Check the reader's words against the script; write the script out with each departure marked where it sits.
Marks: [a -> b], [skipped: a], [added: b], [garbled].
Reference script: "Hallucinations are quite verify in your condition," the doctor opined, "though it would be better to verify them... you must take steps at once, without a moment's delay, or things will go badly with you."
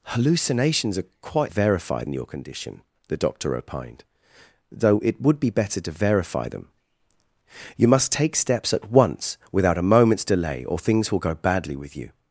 "Hallucinations are quite verify in your condition," the doctor opined, "though it would be better to verify them... you must take steps at once, without a moment's delay, or things will go badly with you."